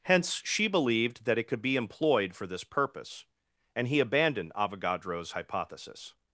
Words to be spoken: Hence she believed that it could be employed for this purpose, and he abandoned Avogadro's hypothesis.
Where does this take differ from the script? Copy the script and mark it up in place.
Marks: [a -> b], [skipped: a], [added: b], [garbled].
Hence she believed that it could be employed for this purpose, and he abandoned Avogadro's hypothesis.